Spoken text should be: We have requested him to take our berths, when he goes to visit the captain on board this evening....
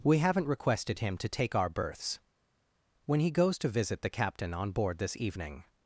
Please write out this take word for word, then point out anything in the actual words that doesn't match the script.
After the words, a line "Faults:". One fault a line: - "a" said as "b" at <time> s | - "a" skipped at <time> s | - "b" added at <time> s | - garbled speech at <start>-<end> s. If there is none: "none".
We haven't requested him to take our berths, when he goes to visit the captain on board this evening....
Faults:
- "have" said as "haven't" at 0.2 s